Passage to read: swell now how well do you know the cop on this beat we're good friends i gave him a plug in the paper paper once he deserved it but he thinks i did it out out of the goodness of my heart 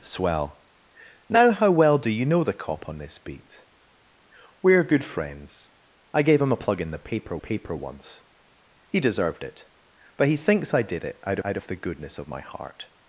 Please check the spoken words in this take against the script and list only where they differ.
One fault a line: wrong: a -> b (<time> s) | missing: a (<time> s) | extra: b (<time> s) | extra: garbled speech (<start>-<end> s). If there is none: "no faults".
no faults